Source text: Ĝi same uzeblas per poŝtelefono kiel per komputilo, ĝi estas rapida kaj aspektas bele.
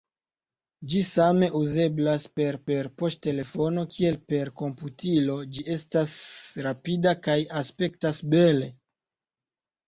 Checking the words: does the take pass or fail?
fail